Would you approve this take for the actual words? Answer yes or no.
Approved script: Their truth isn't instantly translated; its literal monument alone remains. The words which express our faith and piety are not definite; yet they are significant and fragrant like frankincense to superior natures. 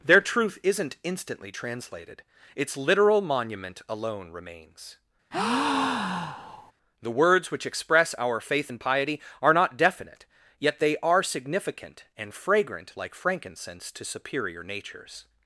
yes